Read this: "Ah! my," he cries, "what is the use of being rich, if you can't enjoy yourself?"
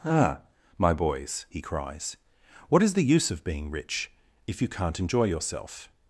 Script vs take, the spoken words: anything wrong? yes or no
yes